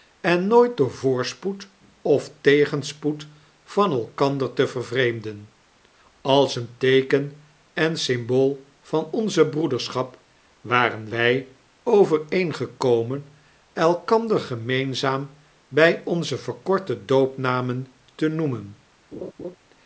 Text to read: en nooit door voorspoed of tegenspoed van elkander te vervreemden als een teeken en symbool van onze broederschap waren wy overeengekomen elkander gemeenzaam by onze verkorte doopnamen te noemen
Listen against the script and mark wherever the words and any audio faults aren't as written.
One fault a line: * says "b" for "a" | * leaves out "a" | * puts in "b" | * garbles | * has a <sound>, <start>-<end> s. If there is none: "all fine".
* has a laugh, 19.1-19.6 s